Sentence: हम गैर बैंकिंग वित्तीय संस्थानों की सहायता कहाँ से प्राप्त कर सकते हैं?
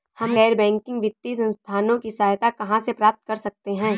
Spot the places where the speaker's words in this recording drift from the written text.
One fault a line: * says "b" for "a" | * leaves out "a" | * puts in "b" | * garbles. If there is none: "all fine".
all fine